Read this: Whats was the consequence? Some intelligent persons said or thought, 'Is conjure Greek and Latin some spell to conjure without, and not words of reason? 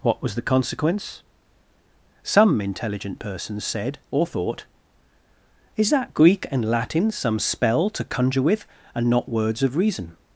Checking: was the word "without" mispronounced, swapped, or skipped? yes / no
yes